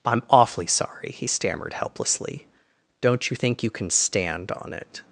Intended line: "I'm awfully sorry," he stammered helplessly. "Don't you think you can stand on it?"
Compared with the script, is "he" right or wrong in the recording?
right